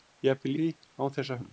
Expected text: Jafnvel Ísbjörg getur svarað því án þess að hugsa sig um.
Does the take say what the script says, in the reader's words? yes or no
no